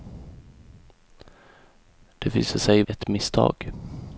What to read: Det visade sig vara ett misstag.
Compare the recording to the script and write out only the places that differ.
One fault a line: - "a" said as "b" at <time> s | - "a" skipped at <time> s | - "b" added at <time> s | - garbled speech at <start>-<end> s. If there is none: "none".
- "vara" skipped at 2.8 s